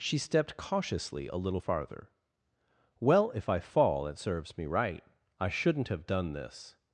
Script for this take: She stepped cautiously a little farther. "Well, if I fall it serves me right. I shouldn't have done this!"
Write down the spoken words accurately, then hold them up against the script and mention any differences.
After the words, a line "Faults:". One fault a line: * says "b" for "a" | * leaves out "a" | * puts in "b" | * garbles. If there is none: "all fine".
She stepped cautiously a little farther. "Well, if I fall it serves me right. I shouldn't have done this!"
Faults:
all fine